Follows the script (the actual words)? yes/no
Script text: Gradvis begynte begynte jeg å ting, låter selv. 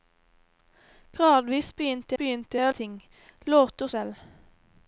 yes